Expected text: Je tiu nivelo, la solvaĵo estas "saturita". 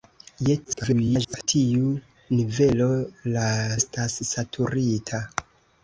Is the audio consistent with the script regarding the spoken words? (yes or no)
no